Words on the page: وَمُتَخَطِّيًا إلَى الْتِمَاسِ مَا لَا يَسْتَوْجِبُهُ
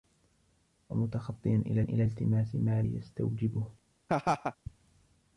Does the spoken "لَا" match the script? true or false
false